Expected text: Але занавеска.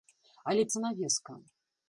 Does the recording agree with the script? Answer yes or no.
yes